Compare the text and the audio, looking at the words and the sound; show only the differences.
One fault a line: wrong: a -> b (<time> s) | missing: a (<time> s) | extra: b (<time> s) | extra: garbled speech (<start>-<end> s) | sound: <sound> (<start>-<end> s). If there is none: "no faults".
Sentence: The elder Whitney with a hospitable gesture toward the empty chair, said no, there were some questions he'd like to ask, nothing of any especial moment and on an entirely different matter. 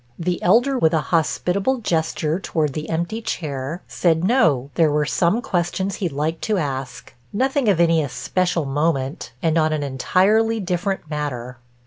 missing: Whitney (0.8 s)